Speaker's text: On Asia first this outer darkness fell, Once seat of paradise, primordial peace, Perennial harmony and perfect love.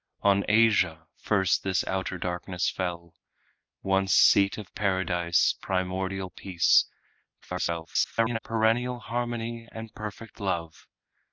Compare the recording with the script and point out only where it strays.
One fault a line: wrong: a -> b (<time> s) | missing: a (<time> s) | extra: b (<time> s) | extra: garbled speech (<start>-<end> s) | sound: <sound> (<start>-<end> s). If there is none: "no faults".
extra: garbled speech (7.4-8.4 s)